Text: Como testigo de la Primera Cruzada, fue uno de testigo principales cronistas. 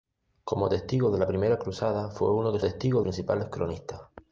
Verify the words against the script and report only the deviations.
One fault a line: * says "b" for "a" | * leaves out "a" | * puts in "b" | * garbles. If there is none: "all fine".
all fine